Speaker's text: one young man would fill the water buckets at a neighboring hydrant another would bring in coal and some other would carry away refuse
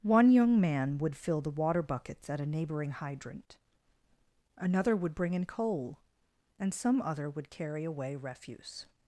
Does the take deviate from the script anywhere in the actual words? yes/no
no